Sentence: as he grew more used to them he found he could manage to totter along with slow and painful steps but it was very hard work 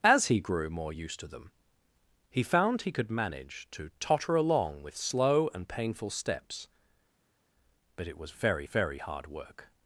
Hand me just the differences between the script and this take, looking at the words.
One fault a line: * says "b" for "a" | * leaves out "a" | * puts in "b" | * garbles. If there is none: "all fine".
* puts in "very"